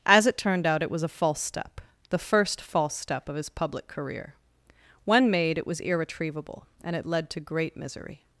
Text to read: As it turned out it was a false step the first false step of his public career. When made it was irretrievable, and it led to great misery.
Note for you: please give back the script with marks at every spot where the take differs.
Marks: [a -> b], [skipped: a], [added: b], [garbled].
As it turned out it was a false step the first false step of his public career. When made it was irretrievable, and it led to great misery.